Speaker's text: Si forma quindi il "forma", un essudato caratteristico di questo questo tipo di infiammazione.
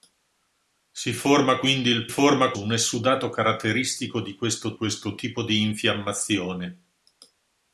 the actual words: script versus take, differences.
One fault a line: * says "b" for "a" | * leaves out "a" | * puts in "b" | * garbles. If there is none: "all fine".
all fine